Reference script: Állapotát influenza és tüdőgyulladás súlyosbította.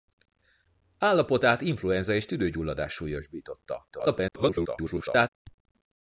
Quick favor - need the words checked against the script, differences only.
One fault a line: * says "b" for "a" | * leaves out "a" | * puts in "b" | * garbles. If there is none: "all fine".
* garbles